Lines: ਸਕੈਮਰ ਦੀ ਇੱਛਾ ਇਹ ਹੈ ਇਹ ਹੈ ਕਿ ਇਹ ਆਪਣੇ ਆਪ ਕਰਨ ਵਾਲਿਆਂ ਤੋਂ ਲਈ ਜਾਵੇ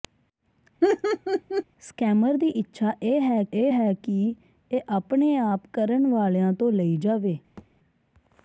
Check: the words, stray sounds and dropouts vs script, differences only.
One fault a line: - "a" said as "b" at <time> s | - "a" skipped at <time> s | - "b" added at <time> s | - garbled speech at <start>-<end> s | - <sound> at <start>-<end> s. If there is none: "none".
- laugh at 0.8-1.6 s
- thud at 7.6-7.7 s